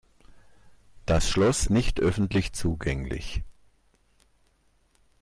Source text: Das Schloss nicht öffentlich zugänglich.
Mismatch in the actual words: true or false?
false